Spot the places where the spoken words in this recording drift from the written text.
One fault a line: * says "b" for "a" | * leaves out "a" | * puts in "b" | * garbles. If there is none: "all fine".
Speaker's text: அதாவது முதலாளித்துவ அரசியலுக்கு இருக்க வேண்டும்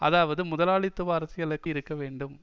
all fine